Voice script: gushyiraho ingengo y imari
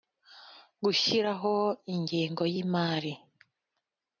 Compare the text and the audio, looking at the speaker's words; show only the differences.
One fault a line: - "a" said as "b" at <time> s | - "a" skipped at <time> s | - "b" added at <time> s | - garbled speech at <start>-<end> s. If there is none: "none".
none